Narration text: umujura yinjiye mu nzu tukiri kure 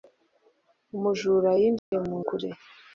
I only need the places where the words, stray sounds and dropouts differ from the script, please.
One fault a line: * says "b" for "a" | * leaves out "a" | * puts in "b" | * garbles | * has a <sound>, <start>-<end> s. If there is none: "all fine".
* has a dropout, 1.8-1.9 s
* leaves out "nzu tukiri"